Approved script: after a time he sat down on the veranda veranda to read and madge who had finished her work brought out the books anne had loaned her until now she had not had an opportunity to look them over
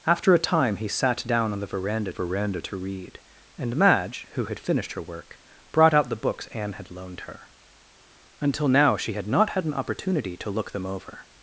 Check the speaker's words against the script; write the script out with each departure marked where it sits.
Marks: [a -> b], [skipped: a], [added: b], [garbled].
after a time he sat down on the veranda veranda to read and madge who had finished her work brought out the books anne had loaned her until now she had not had an opportunity to look them over